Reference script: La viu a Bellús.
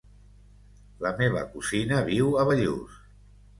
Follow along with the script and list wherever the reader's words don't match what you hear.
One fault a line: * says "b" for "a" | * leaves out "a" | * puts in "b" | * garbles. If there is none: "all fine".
* puts in "meva cosina"